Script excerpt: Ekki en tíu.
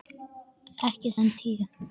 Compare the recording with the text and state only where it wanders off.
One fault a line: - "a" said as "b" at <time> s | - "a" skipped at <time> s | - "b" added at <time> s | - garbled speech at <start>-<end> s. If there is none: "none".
none